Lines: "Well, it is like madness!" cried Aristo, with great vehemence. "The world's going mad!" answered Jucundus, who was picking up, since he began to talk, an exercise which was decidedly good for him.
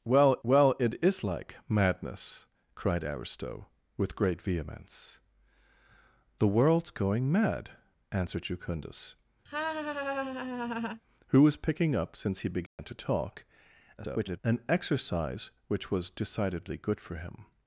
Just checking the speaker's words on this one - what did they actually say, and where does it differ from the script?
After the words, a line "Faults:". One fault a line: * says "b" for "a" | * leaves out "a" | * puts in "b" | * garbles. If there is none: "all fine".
"Well well, it is like madness!" cried Aristo, with great vehemence. "The world's going mad!" answered Jucundus, who was picking up, since he began to talk, [garbled] an exercise which was decidedly good for him.
Faults:
* puts in "well"
* garbles